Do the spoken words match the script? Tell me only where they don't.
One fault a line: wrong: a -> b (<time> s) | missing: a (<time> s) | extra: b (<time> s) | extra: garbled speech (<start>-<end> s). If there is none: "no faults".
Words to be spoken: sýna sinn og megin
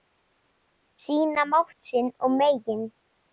extra: mátt (1.5 s)